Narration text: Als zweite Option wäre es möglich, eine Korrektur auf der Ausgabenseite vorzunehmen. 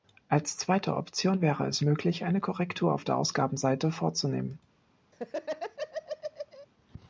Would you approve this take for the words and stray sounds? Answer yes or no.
no